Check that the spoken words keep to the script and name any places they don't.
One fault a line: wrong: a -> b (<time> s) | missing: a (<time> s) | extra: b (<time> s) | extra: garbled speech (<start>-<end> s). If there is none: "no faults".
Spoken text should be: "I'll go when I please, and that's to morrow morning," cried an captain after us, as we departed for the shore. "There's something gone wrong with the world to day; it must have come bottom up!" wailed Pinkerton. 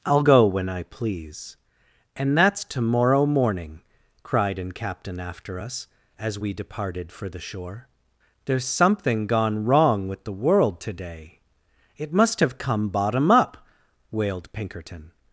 no faults